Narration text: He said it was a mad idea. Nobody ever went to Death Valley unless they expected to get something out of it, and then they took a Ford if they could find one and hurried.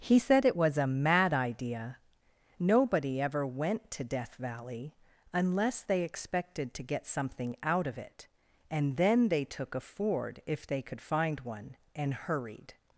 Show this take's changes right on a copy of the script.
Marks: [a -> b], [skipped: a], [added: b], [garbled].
He said it was a mad idea. Nobody ever went to Death Valley unless they expected to get something out of it, and then they took a Ford if they could find one and hurried.